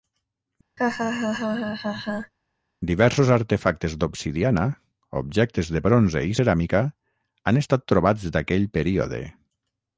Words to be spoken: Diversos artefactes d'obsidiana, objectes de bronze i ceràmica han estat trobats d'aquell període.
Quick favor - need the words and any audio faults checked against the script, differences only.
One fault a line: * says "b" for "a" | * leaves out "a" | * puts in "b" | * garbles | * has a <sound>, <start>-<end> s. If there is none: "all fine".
* has a laugh, 0.8-2.3 s